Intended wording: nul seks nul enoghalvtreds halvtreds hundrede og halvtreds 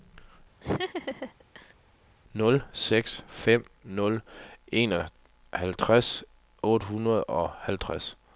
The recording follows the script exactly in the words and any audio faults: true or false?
false